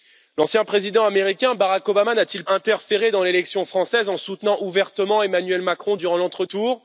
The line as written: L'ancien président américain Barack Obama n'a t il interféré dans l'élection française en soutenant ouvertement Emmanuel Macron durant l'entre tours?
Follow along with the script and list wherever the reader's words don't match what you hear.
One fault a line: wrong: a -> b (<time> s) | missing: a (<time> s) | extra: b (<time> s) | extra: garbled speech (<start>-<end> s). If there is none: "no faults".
no faults